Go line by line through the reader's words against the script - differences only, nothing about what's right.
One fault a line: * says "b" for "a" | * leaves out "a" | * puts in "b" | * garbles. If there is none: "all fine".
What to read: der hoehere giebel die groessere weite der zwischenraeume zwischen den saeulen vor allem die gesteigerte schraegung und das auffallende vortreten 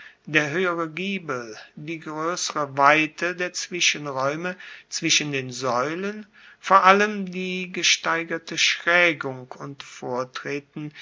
* leaves out "das auffallende"